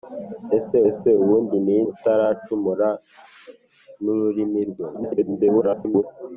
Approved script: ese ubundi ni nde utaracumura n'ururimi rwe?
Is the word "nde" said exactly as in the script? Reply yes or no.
no